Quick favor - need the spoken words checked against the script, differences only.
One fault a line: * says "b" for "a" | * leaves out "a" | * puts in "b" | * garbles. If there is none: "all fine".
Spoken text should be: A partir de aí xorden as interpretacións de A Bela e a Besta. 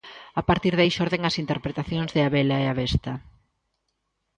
all fine